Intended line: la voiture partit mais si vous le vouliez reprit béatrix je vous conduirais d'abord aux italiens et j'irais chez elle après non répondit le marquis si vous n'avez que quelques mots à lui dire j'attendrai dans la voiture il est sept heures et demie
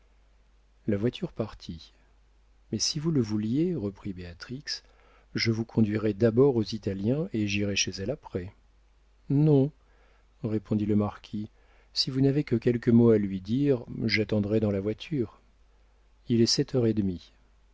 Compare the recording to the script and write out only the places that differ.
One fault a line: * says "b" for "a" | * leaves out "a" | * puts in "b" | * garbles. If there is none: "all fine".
all fine